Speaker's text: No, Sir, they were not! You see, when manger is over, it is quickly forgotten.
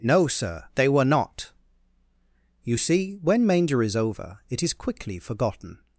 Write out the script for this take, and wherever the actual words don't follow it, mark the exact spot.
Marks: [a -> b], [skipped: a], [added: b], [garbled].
No, Sir, they were not! You see, when manger is over, it is quickly forgotten.